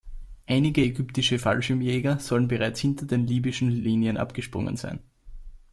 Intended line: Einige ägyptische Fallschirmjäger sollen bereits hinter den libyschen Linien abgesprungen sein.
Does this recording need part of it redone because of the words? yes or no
no